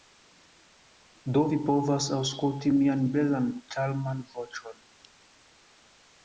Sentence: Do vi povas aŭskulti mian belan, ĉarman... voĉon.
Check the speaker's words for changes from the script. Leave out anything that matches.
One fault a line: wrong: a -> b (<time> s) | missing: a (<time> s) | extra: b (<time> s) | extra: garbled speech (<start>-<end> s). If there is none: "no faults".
no faults